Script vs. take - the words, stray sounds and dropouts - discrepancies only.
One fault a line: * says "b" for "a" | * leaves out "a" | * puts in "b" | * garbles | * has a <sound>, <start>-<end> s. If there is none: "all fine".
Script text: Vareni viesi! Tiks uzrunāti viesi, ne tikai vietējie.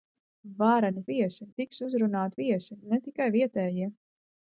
all fine